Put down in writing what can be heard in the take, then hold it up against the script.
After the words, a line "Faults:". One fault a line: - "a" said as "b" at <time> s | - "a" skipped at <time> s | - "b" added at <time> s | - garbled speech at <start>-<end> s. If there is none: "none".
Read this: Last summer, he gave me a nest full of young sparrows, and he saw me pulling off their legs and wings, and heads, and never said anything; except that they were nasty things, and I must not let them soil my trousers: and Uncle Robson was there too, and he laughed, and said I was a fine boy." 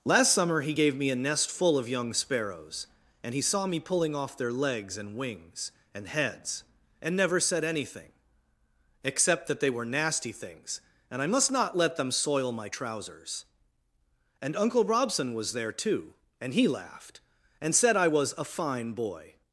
Last summer, he gave me a nest full of young sparrows, and he saw me pulling off their legs and wings, and heads, and never said anything; except that they were nasty things, and I must not let them soil my trousers: and Uncle Robson was there too, and he laughed, and said I was a fine boy."
Faults:
none